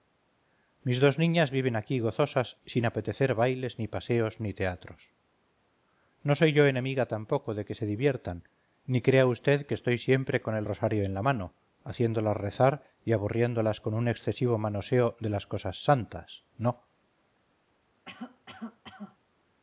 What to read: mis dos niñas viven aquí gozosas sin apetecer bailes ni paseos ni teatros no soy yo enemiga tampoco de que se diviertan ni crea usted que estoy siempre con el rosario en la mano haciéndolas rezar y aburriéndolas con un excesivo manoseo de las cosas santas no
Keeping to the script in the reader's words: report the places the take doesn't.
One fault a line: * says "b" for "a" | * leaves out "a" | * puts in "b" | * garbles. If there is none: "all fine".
all fine